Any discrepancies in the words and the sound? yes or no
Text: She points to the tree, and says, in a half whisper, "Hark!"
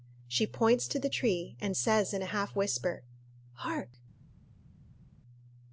no